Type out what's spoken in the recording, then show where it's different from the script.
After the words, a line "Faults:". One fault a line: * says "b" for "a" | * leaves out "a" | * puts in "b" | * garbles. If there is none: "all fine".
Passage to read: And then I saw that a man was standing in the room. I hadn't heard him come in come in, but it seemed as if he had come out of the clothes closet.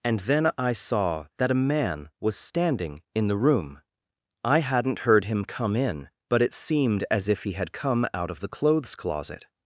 And then I saw that a man was standing in the room. I hadn't heard him come in, but it seemed as if he had come out of the clothes closet.
Faults:
* leaves out "come in"